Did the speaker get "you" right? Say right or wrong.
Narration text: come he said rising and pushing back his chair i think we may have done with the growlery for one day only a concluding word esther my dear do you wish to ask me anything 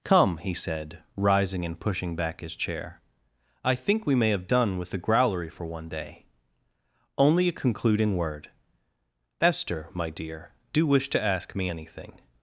wrong